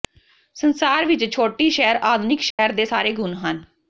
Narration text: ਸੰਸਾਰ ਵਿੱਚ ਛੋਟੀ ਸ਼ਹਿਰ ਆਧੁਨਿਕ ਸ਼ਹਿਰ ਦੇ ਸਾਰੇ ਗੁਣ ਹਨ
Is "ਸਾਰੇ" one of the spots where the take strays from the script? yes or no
no